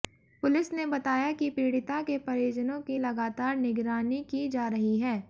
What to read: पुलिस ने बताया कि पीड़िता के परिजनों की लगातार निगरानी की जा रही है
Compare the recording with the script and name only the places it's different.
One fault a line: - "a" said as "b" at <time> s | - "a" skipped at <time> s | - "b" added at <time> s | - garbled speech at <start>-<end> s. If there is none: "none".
none